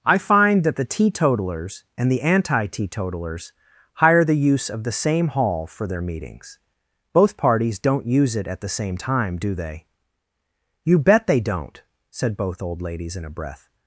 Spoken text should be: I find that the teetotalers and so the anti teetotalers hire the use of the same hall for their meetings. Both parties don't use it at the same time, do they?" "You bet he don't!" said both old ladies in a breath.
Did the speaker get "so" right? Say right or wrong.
wrong